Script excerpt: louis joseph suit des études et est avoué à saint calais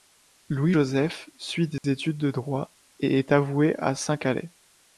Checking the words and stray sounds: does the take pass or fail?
fail